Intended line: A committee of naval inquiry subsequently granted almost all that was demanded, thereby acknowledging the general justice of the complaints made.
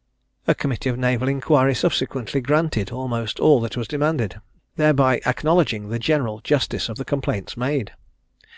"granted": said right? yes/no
yes